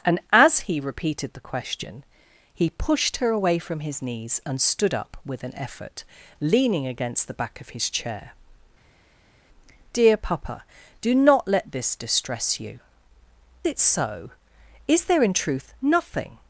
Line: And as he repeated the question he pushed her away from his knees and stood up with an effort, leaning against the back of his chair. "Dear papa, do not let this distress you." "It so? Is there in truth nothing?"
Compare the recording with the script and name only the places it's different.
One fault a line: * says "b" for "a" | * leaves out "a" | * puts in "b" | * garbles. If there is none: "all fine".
all fine